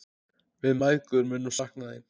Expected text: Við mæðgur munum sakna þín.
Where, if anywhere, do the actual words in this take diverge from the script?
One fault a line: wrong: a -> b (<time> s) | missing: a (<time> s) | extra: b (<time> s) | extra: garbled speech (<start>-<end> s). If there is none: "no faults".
no faults